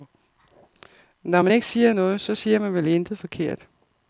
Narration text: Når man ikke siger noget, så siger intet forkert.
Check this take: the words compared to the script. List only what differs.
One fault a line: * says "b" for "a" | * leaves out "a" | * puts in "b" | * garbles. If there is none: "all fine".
* puts in "man vel"